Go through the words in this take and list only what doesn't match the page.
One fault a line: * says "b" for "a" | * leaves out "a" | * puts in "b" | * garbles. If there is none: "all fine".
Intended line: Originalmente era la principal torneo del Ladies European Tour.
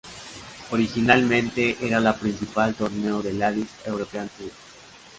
all fine